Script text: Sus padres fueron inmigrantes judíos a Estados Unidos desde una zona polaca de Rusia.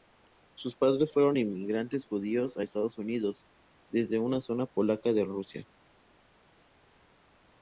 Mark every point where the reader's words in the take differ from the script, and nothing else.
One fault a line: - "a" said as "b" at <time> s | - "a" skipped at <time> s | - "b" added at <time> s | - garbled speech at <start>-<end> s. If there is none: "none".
none